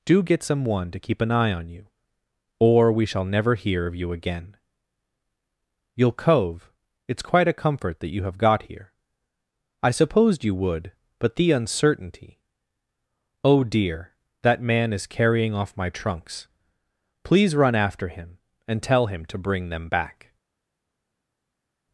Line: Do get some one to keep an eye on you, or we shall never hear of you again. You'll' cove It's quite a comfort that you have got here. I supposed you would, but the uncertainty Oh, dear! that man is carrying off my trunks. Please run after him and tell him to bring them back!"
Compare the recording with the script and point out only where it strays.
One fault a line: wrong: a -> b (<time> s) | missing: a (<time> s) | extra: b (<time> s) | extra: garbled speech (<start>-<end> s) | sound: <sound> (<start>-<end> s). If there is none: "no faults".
no faults